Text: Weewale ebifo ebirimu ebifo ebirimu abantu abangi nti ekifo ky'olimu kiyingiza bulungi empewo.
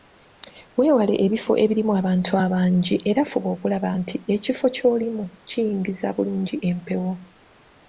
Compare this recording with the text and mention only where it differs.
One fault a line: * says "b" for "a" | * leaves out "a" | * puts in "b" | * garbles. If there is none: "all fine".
* says "abantu abangi era fuba okulaba" for "ebifo ebirimu abantu abangi"